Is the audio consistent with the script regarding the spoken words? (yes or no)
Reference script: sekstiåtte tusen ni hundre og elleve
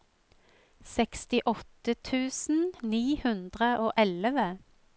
yes